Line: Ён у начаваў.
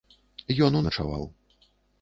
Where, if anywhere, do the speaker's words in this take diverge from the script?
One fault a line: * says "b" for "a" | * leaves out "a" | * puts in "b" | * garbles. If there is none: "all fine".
all fine